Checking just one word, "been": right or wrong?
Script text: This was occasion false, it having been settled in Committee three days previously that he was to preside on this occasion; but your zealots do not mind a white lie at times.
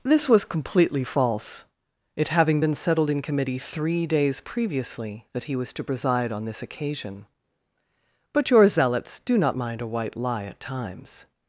right